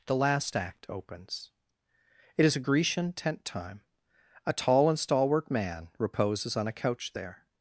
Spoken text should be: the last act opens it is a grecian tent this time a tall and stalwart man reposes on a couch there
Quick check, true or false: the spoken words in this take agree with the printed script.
false